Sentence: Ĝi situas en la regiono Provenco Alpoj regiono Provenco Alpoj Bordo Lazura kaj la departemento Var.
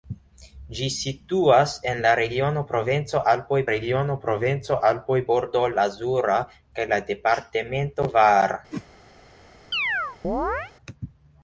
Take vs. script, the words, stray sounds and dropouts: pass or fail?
fail